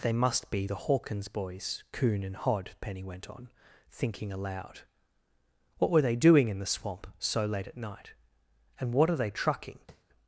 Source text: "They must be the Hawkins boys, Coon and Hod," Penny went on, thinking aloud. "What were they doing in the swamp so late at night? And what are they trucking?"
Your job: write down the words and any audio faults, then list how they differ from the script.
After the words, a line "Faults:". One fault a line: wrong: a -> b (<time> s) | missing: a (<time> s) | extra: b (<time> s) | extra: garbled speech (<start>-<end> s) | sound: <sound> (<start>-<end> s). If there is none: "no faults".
"They must be the Hawkins boys, Coon and Hod," Penny went on, thinking aloud. "What were they doing in the swamp so late at night? And what are they trucking?"
Faults:
sound: tap (9.9-10.0 s)